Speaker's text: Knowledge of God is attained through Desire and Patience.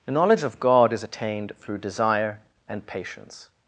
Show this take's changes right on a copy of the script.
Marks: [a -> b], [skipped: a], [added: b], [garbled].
[added: the] Knowledge of God is attained through Desire and Patience.